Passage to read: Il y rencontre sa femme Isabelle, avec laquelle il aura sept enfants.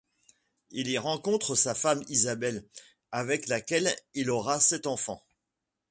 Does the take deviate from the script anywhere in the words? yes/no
no